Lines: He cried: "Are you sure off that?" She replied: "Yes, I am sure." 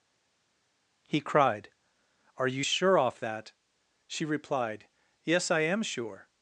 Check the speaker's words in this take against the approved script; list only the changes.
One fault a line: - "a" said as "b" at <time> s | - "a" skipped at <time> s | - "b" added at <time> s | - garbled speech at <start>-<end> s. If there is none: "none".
none